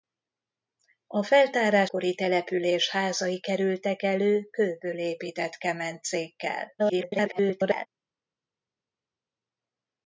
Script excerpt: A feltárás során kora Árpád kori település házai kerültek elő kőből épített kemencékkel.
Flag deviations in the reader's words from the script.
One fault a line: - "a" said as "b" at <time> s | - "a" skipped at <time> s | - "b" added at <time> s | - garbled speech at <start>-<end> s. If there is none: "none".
- "során kora Árpád" skipped at 1.9 s
- garbled speech at 6.8-7.9 s